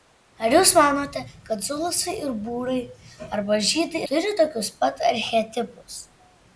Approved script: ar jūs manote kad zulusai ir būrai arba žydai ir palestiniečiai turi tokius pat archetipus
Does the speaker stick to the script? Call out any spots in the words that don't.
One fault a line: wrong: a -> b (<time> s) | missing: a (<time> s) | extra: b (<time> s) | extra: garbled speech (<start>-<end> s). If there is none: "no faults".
missing: ir palestiniečiai (4.0 s)